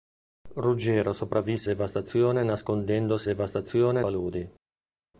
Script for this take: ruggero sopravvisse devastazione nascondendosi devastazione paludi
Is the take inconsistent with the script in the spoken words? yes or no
no